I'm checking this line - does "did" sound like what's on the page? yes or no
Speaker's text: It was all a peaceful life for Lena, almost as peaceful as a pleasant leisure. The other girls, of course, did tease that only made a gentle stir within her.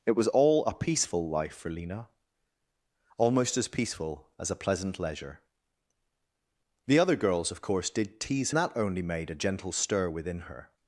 yes